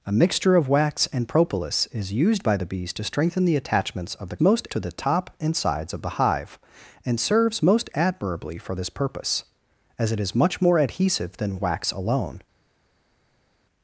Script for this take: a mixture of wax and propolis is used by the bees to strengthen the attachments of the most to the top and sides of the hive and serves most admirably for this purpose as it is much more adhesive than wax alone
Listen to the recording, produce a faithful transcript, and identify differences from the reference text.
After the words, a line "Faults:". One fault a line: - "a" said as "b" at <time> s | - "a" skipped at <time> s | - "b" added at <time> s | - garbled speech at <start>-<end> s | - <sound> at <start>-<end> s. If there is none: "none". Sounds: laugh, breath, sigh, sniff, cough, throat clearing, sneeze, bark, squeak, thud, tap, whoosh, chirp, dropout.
a mixture of wax and propolis is used by the bees to strengthen the attachments of the most to the top and sides of the hive and serves most admirably for this purpose as it is much more adhesive than wax alone
Faults:
none